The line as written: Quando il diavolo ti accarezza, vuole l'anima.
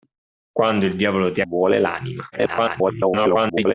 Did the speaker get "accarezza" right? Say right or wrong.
wrong